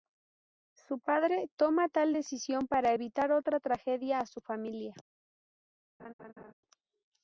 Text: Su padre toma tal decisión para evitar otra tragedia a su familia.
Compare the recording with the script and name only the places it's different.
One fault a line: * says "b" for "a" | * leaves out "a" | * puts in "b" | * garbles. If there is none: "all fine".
all fine